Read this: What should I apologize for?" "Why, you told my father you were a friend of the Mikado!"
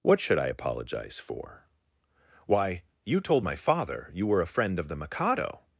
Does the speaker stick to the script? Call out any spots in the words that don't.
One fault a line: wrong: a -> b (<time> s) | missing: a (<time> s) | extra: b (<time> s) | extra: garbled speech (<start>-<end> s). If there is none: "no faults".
no faults